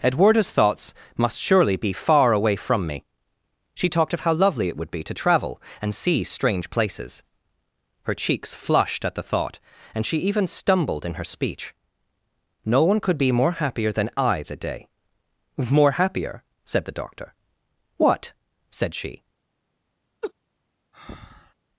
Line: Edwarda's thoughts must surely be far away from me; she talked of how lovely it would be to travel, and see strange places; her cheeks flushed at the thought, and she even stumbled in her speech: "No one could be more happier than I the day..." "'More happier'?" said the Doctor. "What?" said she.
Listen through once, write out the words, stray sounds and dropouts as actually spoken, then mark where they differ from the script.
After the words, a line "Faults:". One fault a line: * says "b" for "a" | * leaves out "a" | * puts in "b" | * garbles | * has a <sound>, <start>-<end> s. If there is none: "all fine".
Edwarda's thoughts must surely be far away from me; she talked of how lovely it would be to travel, and see strange places; her cheeks flushed at the thought, and she even stumbled in her speech: "No one could be more happier than I the day..." "'More happier'?" said the Doctor. "What?" said she.
Faults:
* has a laugh, 20.2-20.3 s
* has a breath, 20.9-21.5 s